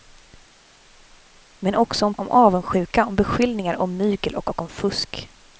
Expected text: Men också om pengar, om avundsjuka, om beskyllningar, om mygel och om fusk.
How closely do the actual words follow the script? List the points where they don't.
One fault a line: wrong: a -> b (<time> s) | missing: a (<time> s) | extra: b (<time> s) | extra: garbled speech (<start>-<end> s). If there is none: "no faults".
missing: pengar (2.1 s)
extra: och (4.5 s)